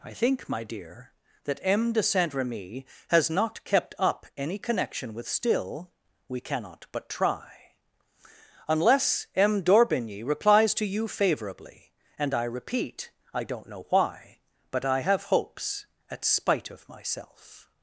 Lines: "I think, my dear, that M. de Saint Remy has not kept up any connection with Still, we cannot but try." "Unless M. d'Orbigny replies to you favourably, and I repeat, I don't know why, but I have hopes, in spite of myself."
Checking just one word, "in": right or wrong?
wrong